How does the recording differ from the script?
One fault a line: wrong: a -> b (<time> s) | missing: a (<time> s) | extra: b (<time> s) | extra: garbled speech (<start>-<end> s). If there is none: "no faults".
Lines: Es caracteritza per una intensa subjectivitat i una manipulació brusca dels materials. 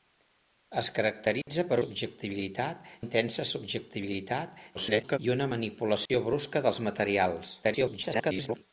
wrong: una -> subjectivitat (1.8 s)
extra: garbled speech (4.7-5.2 s)
extra: garbled speech (7.6-8.6 s)